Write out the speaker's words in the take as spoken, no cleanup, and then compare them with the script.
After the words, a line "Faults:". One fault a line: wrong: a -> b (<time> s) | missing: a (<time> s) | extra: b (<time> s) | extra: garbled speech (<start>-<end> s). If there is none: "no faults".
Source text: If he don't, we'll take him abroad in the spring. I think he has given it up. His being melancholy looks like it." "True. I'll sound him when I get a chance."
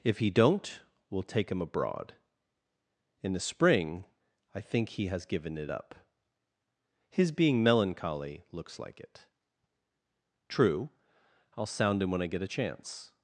If he don't, we'll take him abroad in the spring. I think he has given it up. His being melancholy looks like it." "True. I'll sound him when I get a chance."
Faults:
no faults